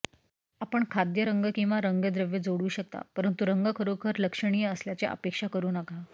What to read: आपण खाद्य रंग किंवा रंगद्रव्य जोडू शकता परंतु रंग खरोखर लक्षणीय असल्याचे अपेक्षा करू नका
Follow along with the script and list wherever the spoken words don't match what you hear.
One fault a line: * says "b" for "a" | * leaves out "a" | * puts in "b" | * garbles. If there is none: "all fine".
all fine